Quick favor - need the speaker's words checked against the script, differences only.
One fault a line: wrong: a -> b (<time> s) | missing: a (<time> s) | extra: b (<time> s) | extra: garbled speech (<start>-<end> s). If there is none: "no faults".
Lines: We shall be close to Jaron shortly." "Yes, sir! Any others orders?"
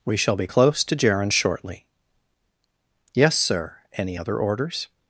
wrong: others -> other (4.1 s)